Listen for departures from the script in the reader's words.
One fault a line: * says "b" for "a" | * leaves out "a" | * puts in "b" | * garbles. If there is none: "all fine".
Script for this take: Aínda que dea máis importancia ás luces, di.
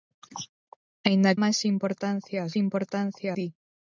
* leaves out "que dea"
* says "importancia" for "luces"